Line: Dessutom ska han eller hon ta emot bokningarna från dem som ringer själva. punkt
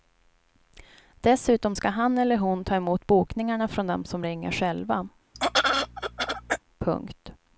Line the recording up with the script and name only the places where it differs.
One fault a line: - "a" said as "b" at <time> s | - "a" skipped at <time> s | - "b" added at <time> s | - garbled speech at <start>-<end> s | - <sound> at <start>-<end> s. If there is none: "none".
- throat clearing at 5.3-6.6 s